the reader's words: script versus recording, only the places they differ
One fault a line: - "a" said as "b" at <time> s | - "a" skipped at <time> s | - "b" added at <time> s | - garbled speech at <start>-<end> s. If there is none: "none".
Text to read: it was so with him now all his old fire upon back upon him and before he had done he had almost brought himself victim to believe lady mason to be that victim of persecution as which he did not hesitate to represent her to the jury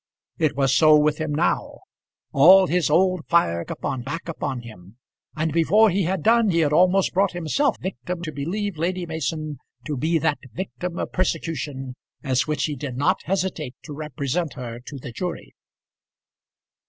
none